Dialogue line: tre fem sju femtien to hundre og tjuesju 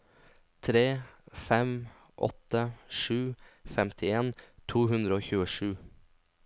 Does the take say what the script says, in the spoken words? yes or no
no